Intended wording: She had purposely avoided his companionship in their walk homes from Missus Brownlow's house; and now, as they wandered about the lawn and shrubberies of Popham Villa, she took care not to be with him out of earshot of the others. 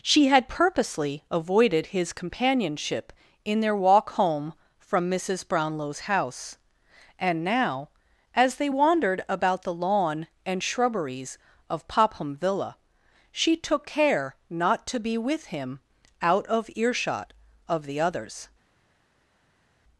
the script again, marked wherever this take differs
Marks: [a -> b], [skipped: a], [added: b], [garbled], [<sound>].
She had purposely avoided his companionship in their walk [homes -> home] from Missus Brownlow's house; and now, as they wandered about the lawn and shrubberies of Popham Villa, she took care not to be with him out of earshot of the others.